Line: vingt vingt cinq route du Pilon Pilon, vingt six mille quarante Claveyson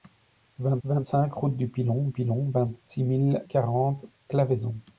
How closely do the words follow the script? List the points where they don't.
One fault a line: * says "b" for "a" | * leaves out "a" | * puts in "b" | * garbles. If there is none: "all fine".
all fine